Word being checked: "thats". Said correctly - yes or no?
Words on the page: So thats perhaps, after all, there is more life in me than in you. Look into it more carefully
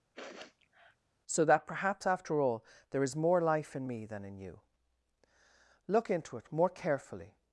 no